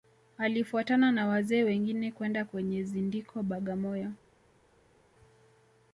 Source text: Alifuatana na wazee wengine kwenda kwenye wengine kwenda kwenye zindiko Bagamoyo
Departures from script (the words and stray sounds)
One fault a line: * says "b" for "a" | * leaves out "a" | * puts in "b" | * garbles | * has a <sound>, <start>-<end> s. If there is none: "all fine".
* leaves out "wengine kwenda kwenye"